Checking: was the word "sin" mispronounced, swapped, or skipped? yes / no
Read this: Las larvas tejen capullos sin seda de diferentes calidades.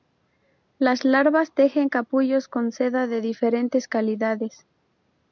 yes